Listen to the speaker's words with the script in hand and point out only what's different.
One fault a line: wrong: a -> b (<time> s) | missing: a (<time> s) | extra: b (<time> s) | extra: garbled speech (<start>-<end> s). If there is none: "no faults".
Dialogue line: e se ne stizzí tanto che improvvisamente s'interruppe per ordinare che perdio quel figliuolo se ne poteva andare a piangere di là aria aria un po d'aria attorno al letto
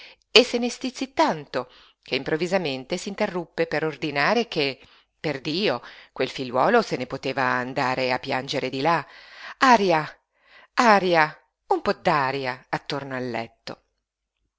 no faults